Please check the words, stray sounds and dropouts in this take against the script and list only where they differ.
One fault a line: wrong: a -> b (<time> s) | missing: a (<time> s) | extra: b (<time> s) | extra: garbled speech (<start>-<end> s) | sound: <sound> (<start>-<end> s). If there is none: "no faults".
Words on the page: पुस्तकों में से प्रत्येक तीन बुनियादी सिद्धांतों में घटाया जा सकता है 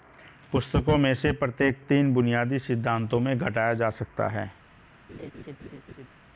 sound: laugh (5.1-6.1 s)